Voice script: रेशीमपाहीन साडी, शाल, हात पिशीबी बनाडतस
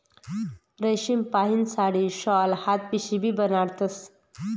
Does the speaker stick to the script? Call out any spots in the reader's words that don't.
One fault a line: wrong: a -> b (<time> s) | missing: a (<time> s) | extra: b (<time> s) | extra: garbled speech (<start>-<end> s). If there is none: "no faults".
no faults